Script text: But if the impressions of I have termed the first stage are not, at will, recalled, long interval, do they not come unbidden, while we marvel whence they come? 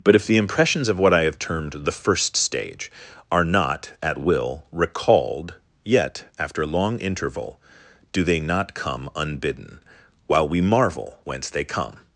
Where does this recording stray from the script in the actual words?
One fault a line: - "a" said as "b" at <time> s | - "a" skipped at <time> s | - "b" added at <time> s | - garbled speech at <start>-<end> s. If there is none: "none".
- "what" added at 1.0 s
- "yet after" added at 5.8 s